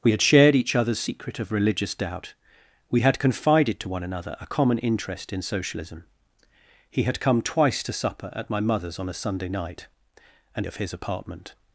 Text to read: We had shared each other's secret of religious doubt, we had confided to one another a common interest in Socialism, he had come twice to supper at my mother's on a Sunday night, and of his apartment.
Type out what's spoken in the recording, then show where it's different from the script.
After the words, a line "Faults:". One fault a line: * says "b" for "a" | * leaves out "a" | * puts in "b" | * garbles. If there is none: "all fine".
We had shared each other's secret of religious doubt, we had confided to one another a common interest in Socialism, he had come twice to supper at my mother's on a Sunday night, and of his apartment.
Faults:
all fine